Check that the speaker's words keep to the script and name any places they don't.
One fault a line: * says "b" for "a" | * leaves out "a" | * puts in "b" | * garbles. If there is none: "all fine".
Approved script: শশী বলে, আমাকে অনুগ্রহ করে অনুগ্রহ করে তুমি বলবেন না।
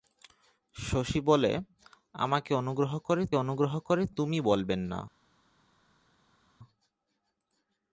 all fine